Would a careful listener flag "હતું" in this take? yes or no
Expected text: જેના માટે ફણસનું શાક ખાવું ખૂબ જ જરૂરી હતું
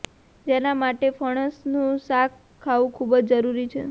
yes